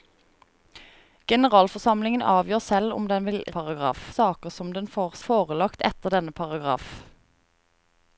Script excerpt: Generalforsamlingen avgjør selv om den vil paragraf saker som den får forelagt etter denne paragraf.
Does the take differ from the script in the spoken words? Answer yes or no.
no